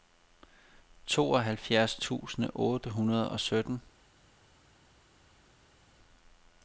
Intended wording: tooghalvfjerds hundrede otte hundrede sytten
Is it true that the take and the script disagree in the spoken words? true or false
true